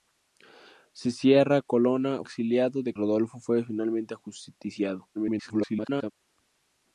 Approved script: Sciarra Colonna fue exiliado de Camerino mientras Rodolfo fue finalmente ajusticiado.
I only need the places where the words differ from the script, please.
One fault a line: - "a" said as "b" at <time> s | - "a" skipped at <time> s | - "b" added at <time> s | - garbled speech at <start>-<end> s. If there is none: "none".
- "fue" skipped at 2.2 s
- "Camerino mientras" skipped at 2.9 s
- garbled speech at 5.1-6.1 s